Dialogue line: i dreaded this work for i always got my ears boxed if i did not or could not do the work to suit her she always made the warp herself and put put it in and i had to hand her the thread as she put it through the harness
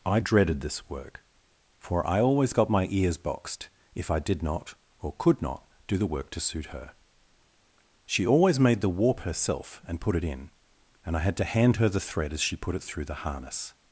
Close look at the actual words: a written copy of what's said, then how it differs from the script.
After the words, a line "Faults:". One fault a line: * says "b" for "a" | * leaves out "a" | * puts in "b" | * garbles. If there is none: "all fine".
i dreaded this work for i always got my ears boxed if i did not or could not do the work to suit her she always made the warp herself and put it in and i had to hand her the thread as she put it through the harness
Faults:
* leaves out "put"